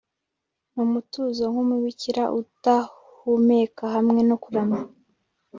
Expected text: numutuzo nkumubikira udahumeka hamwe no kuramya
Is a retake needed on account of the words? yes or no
no